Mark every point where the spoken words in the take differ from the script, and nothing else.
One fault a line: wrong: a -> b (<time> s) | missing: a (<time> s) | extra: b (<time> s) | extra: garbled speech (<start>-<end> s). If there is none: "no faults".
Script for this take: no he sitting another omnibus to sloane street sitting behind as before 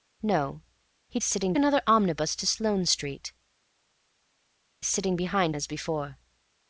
no faults